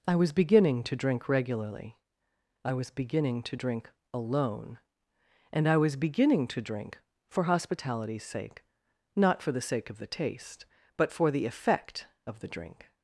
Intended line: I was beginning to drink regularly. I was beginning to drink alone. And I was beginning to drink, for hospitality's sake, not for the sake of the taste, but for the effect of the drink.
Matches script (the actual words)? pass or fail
pass